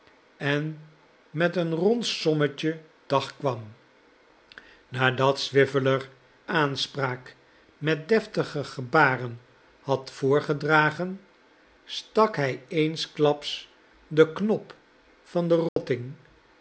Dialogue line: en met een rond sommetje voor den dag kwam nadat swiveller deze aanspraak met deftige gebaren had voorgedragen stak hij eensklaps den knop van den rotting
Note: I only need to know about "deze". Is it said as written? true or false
false